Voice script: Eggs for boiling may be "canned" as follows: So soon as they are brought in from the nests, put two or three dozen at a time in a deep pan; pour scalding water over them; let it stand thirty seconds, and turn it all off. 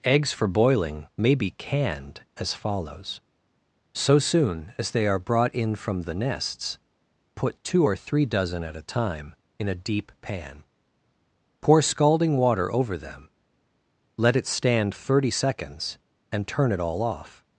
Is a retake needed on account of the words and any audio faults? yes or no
no